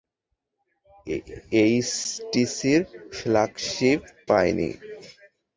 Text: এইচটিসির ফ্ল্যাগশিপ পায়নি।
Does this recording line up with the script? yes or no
yes